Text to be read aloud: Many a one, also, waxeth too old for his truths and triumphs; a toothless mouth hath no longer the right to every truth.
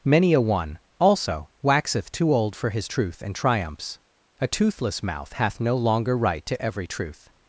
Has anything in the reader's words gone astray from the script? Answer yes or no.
yes